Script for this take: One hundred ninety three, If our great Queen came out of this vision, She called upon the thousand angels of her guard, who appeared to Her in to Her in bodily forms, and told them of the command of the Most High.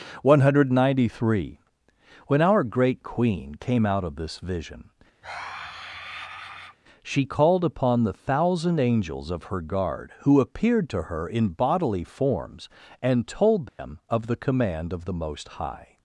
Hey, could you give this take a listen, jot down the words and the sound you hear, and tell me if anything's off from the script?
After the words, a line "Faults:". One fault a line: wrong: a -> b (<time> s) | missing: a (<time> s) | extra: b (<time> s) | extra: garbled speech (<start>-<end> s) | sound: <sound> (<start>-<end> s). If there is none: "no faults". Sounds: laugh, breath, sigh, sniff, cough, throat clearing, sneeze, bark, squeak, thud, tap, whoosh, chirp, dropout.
One hundred ninety three, When our great Queen came out of this vision, She called upon the thousand angels of her guard, who appeared to Her in bodily forms, and told them of the command of the Most High.
Faults:
wrong: If -> When (2.2 s)
sound: sigh (5.2-6.8 s)
missing: to Her in (11.5 s)
sound: dropout (13.7-13.8 s)